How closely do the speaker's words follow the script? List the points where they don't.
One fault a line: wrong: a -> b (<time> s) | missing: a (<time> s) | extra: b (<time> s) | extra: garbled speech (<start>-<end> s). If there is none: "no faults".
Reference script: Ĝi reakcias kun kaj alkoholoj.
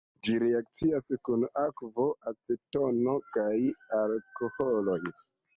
extra: akvo acetono (1.6 s)